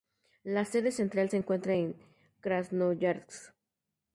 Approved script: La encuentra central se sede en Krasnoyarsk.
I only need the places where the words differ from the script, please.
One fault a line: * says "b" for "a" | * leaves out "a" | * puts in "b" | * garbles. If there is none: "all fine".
* says "sede" for "encuentra"
* says "encuentra" for "sede"